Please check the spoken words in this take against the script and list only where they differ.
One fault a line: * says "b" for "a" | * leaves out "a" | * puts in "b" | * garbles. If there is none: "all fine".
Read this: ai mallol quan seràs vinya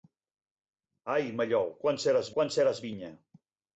* puts in "quan seràs"